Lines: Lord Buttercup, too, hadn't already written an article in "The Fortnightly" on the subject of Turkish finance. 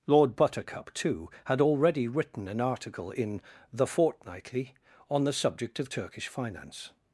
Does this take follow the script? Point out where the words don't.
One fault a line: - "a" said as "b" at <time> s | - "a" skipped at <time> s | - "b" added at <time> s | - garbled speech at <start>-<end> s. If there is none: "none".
- "hadn't" said as "had" at 1.4 s